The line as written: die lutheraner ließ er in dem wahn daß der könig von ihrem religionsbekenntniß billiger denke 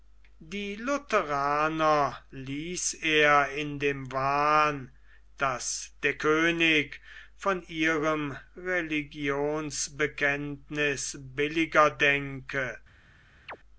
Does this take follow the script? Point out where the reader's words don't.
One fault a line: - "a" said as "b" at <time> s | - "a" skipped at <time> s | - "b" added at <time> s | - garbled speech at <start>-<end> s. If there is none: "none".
none